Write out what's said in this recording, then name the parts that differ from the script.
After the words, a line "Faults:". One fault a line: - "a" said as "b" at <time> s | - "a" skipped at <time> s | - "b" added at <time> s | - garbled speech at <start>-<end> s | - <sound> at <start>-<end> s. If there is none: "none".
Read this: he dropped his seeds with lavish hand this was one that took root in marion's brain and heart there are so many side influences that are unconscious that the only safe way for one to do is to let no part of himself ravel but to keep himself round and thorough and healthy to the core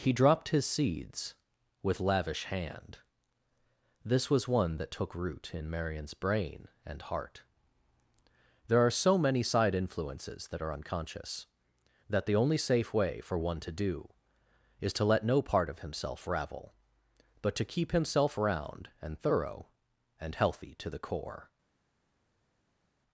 he dropped his seeds with lavish hand this was one that took root in marion's brain and heart there are so many side influences that are unconscious that the only safe way for one to do is to let no part of himself ravel but to keep himself round and thorough and healthy to the core
Faults:
none